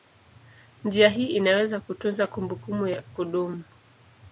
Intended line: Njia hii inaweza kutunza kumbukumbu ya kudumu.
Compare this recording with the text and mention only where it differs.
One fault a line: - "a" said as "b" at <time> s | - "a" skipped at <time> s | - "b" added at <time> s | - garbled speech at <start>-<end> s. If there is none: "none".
none